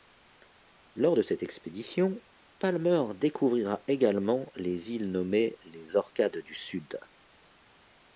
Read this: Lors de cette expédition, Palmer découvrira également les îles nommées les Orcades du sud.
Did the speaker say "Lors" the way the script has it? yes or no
yes